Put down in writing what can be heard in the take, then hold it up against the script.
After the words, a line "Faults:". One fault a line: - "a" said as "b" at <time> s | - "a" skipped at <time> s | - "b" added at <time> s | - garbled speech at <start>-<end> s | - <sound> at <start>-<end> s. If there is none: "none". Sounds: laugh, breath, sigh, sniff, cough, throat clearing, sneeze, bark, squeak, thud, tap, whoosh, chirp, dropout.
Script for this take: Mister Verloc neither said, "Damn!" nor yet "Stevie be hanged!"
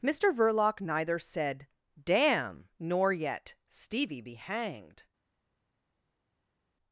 Mister Verloc neither said, "Damn!" nor yet "Stevie be hanged!"
Faults:
none